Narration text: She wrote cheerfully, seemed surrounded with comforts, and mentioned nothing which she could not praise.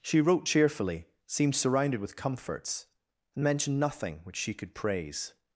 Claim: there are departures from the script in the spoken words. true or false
true